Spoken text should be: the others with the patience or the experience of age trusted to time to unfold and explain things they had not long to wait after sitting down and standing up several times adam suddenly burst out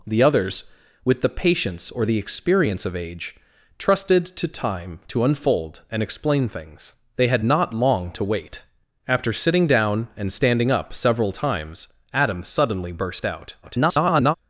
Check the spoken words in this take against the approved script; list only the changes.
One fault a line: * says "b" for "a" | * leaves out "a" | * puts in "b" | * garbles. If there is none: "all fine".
* garbles